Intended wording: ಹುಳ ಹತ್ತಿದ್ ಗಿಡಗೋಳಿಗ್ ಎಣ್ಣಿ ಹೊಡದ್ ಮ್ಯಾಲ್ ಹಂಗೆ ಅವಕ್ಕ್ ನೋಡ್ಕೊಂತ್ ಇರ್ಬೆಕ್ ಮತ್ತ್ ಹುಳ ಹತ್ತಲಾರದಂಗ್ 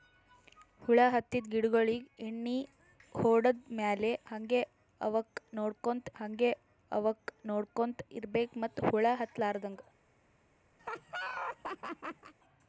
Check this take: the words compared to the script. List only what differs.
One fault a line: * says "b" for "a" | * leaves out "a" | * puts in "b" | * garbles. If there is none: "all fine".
* puts in "ಹಂಗೆ ಅವಕ್ಕ್ ನೋಡ್ಕೊಂತ್"